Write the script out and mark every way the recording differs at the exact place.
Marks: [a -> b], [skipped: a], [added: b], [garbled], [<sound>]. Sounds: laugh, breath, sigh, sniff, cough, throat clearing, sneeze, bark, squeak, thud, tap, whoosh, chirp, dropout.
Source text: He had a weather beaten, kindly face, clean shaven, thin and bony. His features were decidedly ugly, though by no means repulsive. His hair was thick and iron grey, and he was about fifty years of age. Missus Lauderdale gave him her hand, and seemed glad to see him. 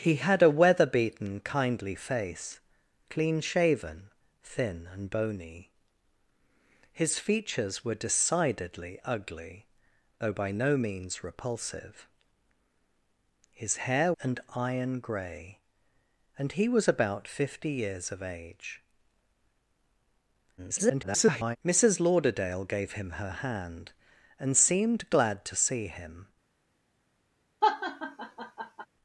He had a weather beaten, kindly face, clean shaven, thin and bony. His features were decidedly ugly, though by no means repulsive. His hair [skipped: was thick] and iron grey, and he was about fifty years of age. [garbled] Missus Lauderdale gave him her hand, and seemed glad to see him. [laugh]